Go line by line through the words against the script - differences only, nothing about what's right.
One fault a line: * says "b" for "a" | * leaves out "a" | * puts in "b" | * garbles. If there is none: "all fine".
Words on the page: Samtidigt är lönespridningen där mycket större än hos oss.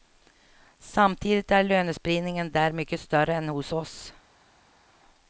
all fine